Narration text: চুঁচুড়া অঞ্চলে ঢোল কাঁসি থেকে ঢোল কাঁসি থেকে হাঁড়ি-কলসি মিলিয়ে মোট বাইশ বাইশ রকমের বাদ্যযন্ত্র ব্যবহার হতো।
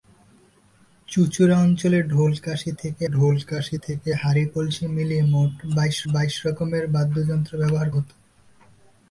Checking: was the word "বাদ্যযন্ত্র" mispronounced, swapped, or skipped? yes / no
no